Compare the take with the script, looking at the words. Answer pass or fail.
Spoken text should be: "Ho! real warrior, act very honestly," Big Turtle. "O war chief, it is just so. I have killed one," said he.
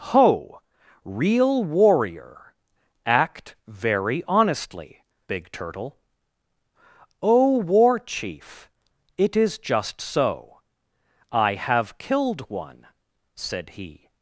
pass